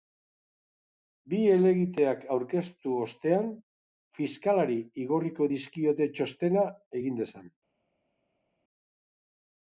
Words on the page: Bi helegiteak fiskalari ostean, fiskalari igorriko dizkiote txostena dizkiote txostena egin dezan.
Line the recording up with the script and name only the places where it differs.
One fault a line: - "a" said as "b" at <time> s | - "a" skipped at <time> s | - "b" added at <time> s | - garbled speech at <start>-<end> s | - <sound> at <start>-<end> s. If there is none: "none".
- "fiskalari" said as "aurkeztu" at 2.4 s
- "dizkiote txostena" skipped at 6.7 s